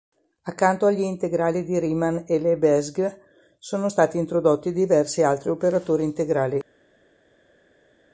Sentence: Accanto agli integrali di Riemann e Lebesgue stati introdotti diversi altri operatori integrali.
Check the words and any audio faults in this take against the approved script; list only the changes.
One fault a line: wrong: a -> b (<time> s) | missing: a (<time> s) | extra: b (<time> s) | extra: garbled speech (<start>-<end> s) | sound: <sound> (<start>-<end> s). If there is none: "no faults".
extra: sono (3.6 s)